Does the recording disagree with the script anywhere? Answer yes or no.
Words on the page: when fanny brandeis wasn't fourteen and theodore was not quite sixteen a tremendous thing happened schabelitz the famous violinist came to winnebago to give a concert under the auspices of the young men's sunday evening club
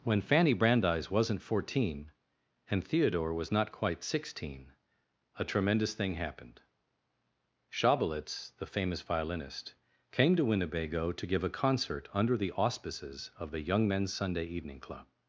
no